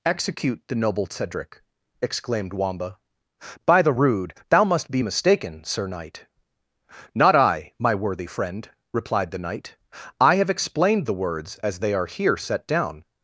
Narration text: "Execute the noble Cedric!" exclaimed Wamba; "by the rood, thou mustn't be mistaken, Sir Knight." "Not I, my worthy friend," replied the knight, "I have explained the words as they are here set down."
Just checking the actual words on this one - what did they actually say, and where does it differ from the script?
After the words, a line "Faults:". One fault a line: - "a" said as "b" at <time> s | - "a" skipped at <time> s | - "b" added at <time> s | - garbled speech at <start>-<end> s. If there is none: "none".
"Execute the noble Cedric!" exclaimed Wamba; "by the rood, thou must be mistaken, Sir Knight." "Not I, my worthy friend," replied the knight, "I have explained the words as they are here set down."
Faults:
- "mustn't" said as "must" at 4.6 s